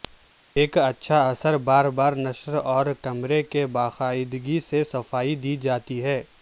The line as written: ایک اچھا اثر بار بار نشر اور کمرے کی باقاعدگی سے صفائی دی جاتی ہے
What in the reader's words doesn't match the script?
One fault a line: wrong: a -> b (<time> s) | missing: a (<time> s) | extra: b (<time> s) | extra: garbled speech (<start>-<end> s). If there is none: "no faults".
no faults